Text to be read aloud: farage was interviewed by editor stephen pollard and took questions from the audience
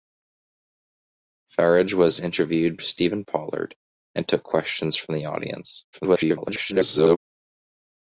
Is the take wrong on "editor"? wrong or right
wrong